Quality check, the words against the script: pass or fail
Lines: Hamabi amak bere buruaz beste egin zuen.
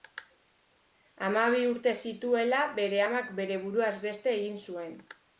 fail